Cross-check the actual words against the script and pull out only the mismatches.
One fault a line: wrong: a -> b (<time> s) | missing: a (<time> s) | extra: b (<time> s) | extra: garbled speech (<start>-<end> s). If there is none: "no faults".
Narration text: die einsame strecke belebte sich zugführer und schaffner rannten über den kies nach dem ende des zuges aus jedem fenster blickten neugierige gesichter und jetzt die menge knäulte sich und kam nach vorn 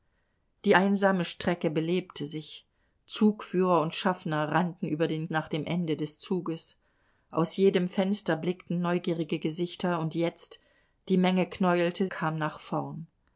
missing: kies (5.3 s)
missing: sich und (12.1 s)